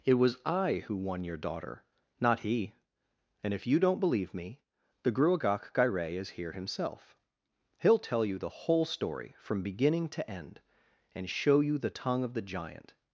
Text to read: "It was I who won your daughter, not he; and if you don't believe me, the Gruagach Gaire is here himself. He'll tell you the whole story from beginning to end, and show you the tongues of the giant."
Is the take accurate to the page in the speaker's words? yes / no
no